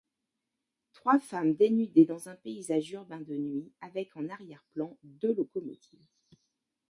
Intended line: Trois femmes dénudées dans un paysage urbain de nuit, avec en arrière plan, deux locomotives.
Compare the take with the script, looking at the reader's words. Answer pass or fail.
pass